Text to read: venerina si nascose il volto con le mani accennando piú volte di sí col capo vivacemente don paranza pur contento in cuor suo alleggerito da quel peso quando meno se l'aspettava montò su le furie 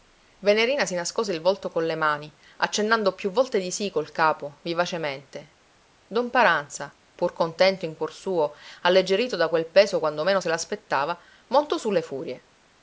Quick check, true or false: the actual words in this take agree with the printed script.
true